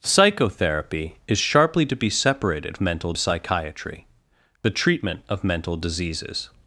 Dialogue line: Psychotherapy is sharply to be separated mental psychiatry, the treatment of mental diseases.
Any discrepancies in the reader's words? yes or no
no